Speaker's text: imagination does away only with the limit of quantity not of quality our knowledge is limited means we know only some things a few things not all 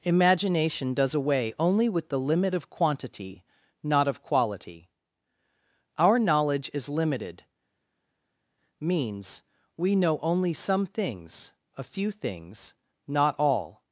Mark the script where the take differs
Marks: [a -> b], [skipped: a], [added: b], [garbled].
imagination does away only with the limit of quantity not of quality our knowledge is limited means we know only some things a few things not all